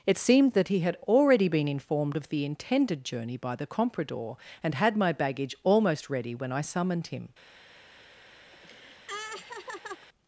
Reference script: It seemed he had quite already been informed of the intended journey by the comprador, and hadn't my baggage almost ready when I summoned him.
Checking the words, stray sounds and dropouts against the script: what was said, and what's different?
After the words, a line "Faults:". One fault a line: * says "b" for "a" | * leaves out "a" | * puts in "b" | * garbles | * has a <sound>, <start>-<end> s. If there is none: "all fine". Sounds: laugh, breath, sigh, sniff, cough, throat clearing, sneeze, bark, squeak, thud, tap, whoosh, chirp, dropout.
It seemed that he had already been informed of the intended journey by the comprador, and had my baggage almost ready when I summoned him.
Faults:
* puts in "that"
* leaves out "quite"
* says "had" for "hadn't"
* has a laugh, 8.5-10.1 s